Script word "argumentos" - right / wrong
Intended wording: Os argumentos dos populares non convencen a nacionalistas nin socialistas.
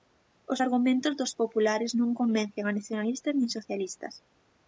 right